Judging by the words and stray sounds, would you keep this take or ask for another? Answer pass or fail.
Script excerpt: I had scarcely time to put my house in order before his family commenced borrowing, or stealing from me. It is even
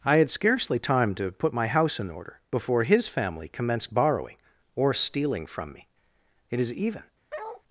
fail